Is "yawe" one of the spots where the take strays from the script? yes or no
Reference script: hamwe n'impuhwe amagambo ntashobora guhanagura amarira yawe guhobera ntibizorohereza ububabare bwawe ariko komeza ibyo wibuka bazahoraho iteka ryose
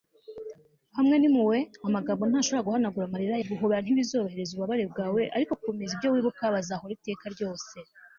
yes